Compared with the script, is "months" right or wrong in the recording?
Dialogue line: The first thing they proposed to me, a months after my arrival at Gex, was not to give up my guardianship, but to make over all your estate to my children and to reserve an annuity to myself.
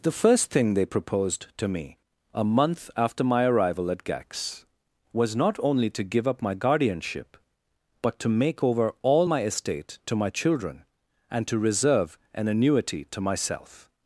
wrong